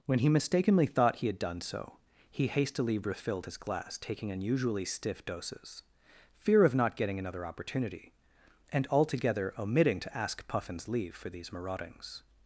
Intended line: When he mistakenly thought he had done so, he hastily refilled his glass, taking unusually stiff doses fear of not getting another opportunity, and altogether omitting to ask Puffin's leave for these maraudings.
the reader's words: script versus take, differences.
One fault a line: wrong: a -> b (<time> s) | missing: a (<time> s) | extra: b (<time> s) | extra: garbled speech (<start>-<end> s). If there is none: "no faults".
no faults